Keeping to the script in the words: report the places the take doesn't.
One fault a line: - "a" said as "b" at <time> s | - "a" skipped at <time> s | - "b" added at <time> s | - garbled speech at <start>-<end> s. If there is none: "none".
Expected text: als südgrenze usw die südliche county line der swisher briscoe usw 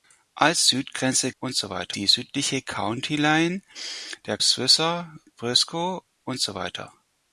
none